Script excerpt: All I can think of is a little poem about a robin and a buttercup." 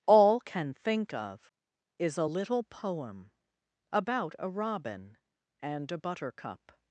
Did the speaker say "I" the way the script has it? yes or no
no